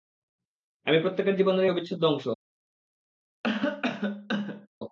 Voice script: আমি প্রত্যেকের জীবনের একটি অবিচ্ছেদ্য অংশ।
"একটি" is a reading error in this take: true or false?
true